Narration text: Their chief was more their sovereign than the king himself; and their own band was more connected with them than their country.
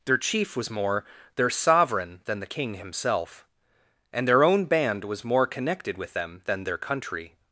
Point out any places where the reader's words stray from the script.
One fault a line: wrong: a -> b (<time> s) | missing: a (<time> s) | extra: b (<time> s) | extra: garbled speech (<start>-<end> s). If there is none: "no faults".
no faults